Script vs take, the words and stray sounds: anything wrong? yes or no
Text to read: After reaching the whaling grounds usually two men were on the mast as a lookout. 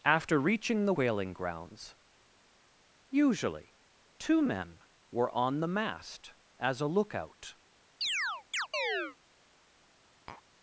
yes